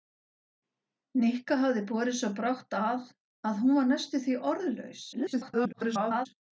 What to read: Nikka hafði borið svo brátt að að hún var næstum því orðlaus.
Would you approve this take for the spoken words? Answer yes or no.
no